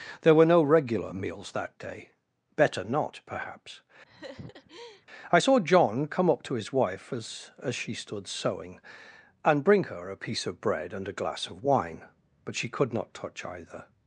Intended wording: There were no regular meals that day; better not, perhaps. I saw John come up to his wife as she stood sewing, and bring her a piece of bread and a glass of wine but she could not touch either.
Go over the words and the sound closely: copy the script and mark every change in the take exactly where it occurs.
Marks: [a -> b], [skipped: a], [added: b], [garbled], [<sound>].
There were no regular meals that day; better not, perhaps. [laugh] I saw John come up to his wife as [added: as] she stood sewing, and bring her a piece of bread and a glass of wine but she could not touch either.